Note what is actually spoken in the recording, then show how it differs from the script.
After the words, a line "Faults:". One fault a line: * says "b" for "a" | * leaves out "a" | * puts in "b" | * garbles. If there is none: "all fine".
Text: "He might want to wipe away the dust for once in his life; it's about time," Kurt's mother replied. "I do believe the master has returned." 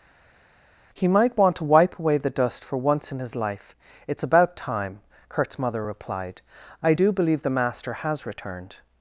"He might want to wipe away the dust for once in his life; it's about time," Kurt's mother replied. "I do believe the master has returned."
Faults:
all fine